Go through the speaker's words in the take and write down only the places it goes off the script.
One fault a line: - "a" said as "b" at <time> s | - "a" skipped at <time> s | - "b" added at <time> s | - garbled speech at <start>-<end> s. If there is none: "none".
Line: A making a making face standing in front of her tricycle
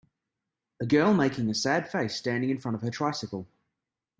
- "girl" added at 0.9 s
- "making" said as "sad" at 1.5 s